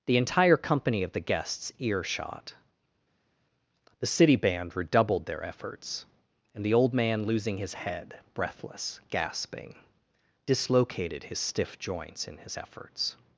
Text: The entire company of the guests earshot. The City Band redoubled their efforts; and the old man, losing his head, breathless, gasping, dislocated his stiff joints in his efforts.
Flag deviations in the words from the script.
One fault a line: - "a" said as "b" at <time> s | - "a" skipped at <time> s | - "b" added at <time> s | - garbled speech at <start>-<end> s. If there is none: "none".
none